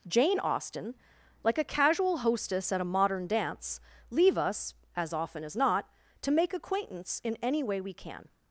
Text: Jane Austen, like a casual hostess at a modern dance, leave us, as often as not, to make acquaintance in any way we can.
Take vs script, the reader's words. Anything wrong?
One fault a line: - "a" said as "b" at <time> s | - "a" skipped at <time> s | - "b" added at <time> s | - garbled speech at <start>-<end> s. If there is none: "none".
none